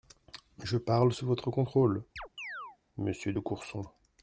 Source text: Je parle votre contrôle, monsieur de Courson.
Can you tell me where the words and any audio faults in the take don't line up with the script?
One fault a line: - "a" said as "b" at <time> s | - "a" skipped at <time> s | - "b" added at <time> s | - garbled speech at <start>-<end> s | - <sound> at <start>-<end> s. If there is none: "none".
- "sous" added at 1.1 s
- chirp at 2.2-2.8 s